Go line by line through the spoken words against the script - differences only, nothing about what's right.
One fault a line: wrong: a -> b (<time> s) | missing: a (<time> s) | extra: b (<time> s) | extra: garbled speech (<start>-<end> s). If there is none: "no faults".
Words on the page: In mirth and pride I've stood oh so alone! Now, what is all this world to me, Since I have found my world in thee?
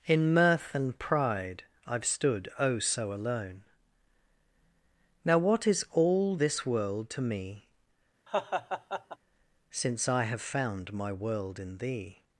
no faults